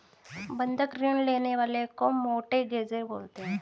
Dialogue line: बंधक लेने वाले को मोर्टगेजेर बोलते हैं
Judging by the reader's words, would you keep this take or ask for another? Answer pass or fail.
fail